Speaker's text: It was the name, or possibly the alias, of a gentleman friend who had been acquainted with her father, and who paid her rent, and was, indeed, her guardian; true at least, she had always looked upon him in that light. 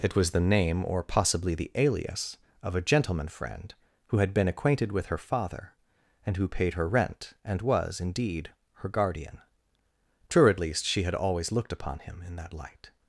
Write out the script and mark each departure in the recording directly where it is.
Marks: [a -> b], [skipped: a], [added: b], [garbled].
It was the name, or possibly the alias, of a gentleman friend who had been acquainted with her father, and who paid her rent, and was, indeed, her guardian; true at least, she had always looked upon him in that light.